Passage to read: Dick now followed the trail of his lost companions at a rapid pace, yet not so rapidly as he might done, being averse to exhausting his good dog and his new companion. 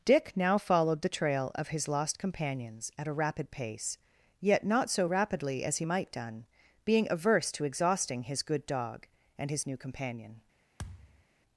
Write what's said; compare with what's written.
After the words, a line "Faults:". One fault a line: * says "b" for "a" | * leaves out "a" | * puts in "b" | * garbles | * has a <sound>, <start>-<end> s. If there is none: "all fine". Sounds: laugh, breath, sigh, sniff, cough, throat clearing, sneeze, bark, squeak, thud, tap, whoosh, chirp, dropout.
Dick now followed the trail of his lost companions at a rapid pace, yet not so rapidly as he might done, being averse to exhausting his good dog and his new companion.
Faults:
* has a thud, 10.8-11.2 s